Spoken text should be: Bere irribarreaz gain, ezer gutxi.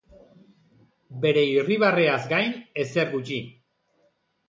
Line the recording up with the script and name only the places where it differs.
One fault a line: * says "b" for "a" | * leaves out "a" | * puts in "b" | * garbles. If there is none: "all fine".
all fine